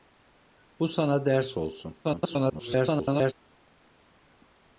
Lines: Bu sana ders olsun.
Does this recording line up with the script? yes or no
no